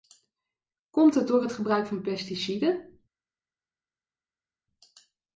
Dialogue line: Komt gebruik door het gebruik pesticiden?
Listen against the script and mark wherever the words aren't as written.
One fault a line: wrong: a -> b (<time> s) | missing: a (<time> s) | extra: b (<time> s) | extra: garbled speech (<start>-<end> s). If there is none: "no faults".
wrong: gebruik -> het (1.1 s)
extra: van (1.9 s)